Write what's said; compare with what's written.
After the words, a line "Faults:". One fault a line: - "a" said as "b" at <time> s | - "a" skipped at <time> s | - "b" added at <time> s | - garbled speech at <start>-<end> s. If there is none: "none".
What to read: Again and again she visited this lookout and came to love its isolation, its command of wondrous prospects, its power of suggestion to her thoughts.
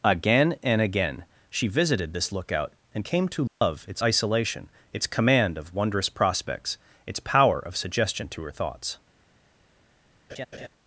Again and again she visited this lookout and came to love its isolation, its command of wondrous prospects, its power of suggestion to her thoughts.
Faults:
none